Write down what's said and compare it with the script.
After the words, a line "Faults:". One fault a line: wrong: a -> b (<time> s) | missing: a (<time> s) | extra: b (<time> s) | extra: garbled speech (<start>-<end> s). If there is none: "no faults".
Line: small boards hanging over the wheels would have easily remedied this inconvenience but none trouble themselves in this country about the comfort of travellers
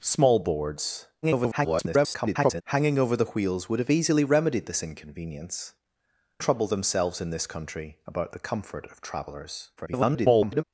small boards [garbled] hanging over the wheels would have easily remedied this inconvenience trouble themselves in this country about the comfort of travellers [garbled]
Faults:
extra: garbled speech (1.2-2.6 s)
missing: but none (5.7 s)
extra: garbled speech (9.8-10.6 s)